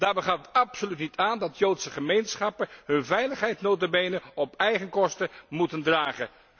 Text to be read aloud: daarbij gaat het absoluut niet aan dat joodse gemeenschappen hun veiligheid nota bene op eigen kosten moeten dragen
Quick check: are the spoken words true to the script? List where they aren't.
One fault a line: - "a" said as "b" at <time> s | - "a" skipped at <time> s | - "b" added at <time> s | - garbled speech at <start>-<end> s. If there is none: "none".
none